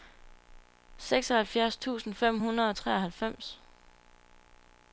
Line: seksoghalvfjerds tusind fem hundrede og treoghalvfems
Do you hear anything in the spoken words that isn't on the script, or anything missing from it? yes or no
no